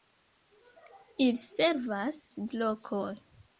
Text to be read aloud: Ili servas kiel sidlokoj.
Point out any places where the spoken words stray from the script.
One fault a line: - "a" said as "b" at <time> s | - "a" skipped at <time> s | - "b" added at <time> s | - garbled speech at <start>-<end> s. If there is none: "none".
- "kiel" skipped at 2.2 s